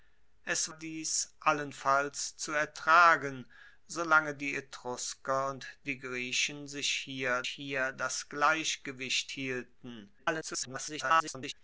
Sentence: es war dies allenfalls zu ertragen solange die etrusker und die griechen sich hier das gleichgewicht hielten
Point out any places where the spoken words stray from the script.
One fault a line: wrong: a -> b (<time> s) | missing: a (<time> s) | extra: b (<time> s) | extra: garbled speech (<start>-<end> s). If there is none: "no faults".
missing: war (0.7 s)
extra: hier (7.4 s)
extra: garbled speech (10.2-11.5 s)